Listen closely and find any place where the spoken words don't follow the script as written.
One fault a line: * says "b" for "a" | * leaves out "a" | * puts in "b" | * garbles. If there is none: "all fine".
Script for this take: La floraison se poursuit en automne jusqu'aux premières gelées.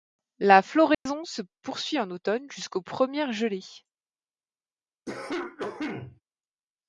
all fine